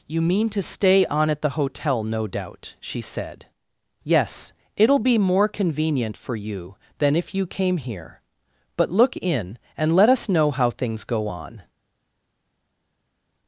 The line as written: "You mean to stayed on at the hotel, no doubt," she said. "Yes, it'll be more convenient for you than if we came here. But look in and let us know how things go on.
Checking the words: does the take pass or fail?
fail